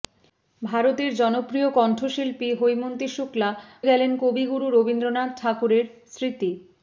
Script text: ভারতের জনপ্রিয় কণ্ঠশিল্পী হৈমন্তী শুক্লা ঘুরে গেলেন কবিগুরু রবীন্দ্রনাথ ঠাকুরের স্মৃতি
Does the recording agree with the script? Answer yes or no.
no